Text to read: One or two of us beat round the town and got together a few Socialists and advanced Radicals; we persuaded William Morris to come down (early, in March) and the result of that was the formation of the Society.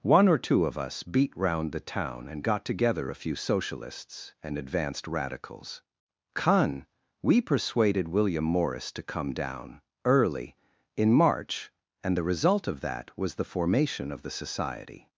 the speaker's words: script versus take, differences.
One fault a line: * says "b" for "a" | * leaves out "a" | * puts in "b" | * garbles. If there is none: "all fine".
* puts in "con"